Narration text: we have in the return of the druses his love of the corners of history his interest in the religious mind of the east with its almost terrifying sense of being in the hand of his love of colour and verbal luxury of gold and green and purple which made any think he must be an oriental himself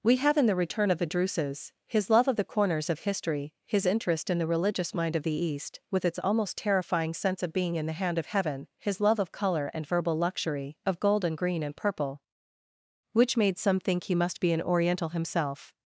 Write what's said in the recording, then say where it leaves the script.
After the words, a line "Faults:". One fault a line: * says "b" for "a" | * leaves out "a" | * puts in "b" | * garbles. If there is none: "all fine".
we have in the return of the druses his love of the corners of history his interest in the religious mind of the east with its almost terrifying sense of being in the hand of heaven his love of colour and verbal luxury of gold and green and purple which made some think he must be an oriental himself
Faults:
* puts in "heaven"
* says "some" for "any"